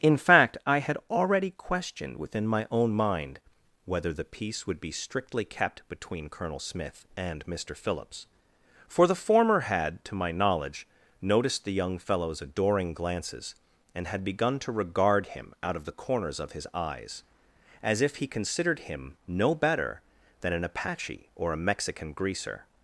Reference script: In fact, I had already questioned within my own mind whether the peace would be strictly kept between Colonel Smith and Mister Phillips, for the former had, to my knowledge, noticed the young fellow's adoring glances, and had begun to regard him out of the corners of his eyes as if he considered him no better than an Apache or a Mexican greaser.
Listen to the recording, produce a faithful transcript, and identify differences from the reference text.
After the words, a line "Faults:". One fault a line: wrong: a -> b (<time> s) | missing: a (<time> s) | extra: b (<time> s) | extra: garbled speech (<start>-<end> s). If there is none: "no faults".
In fact, I had already questioned within my own mind whether the peace would be strictly kept between Colonel Smith and Mister Phillips, for the former had, to my knowledge, noticed the young fellow's adoring glances, and had begun to regard him out of the corners of his eyes as if he considered him no better than an Apache or a Mexican greaser.
Faults:
no faults